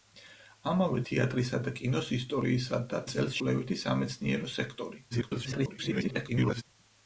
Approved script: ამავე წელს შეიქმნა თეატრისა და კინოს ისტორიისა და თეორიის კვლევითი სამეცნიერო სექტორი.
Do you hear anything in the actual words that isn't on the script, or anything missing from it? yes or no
yes